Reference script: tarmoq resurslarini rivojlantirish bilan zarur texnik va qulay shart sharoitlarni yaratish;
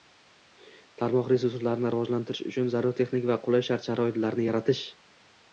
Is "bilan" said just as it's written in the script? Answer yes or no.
no